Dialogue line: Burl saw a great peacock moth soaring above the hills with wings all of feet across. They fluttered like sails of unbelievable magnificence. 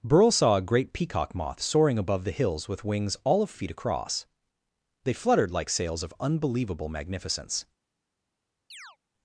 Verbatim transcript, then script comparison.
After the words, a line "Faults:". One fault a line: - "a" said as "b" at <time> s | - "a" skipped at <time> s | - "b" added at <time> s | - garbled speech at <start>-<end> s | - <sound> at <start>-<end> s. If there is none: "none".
Burl saw a great peacock moth soaring above the hills with wings all of feet across. They fluttered like sails of unbelievable magnificence.
Faults:
- chirp at 8.7-9.0 s